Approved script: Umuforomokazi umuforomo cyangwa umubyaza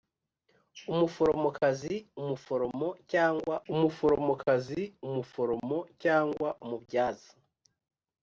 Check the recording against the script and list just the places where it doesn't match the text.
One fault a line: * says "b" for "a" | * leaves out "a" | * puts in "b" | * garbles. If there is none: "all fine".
* puts in "umuforomokazi umuforomo cyangwa"